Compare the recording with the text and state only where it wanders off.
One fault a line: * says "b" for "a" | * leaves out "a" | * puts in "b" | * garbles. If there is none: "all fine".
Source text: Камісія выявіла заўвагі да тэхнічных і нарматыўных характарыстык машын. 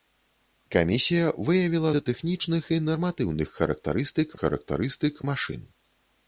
* leaves out "заўвагі"
* puts in "характарыстык"